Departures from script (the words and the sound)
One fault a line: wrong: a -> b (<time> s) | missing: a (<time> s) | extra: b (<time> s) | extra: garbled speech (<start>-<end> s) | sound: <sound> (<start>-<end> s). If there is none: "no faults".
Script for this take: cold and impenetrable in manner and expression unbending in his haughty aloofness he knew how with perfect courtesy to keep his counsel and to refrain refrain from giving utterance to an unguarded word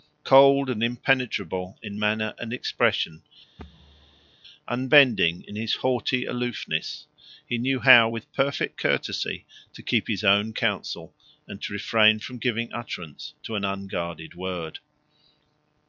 sound: thud (3.6-4.4 s)
extra: own (10.2 s)
missing: refrain (12.2 s)